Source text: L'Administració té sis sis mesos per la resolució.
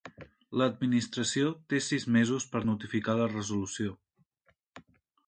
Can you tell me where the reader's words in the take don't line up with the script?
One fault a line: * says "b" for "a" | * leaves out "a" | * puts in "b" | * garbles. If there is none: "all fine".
* leaves out "sis"
* puts in "notificar"